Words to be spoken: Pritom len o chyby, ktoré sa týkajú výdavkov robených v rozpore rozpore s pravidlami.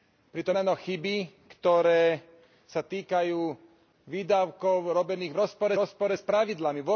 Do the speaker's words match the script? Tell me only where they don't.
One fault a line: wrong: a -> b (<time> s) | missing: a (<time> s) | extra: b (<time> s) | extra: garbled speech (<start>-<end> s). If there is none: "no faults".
no faults